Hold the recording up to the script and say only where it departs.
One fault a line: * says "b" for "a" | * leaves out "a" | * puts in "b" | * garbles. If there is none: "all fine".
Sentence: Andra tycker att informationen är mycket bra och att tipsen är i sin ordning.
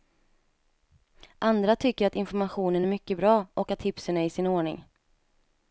all fine